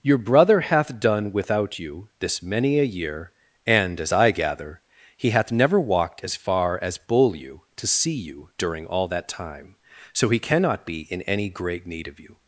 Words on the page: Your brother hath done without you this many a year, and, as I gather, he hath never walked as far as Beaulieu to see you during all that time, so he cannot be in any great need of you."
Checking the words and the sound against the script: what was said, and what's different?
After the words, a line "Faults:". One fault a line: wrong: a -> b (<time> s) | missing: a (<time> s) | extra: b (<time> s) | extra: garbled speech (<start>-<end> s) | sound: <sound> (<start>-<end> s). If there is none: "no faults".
Your brother hath done without you this many a year, and, as I gather, he hath never walked as far as Beaulieu to see you during all that time, so he cannot be in any great need of you."
Faults:
no faults